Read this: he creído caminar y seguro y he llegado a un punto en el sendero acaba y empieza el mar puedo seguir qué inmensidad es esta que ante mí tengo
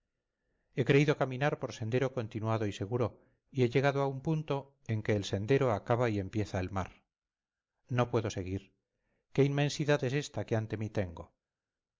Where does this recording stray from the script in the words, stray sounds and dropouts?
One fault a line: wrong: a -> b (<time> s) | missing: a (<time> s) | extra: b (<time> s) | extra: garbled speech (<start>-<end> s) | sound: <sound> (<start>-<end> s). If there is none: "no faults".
extra: por sendero continuado (1.6 s)
extra: que (5.0 s)
extra: no (7.9 s)